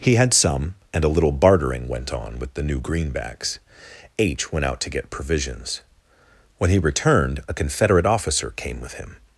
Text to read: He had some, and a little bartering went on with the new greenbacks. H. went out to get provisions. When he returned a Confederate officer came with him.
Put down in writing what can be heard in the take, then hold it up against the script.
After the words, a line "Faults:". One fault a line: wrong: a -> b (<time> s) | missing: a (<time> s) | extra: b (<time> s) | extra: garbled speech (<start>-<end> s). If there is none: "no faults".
He had some, and a little bartering went on with the new greenbacks. H. went out to get provisions. When he returned a Confederate officer came with him.
Faults:
no faults